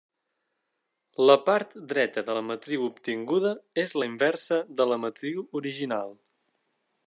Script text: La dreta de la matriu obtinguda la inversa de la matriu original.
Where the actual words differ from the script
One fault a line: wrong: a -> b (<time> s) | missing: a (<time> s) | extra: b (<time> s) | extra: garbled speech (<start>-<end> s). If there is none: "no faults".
extra: part (1.5 s)
extra: és (3.9 s)